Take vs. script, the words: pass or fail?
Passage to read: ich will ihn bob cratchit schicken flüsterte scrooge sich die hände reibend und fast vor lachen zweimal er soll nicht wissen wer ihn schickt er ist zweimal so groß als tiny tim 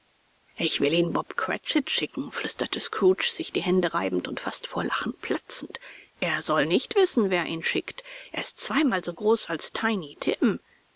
fail